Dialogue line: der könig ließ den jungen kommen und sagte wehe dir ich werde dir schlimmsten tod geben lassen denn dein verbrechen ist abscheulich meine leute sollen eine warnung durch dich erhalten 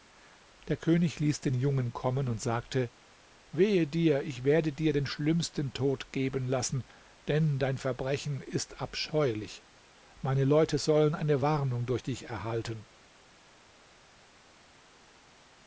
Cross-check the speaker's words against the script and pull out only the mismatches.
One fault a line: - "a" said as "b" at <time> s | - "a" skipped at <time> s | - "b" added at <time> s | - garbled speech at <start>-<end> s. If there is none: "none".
- "den" added at 4.9 s